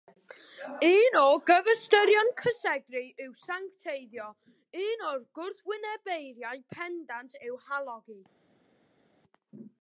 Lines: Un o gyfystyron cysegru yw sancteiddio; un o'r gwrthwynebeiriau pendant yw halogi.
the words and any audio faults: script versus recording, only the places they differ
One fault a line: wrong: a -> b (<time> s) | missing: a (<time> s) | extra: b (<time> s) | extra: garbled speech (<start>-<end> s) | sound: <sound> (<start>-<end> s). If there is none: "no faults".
no faults